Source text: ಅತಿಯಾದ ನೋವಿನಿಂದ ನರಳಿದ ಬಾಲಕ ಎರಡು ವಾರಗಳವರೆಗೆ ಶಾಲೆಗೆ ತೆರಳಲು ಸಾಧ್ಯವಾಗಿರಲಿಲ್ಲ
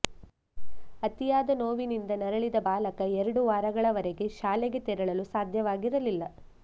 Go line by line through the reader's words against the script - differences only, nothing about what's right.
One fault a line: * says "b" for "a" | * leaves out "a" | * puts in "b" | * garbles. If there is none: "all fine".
all fine